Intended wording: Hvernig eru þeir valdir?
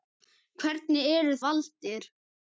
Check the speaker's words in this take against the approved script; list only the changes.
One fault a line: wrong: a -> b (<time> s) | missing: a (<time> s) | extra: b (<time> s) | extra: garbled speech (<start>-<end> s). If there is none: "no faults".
missing: þeir (1.4 s)